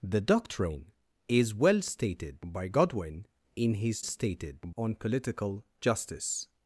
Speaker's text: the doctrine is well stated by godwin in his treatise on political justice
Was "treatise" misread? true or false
true